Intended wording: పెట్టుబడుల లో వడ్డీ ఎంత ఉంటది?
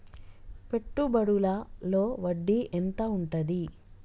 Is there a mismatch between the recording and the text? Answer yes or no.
no